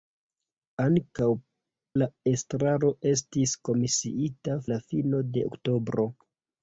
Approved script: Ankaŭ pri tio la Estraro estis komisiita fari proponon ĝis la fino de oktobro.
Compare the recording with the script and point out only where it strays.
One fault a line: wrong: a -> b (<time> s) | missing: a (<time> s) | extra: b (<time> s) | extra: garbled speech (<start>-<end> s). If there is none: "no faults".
missing: pri tio (1.2 s)
missing: fari proponon ĝis (4.6 s)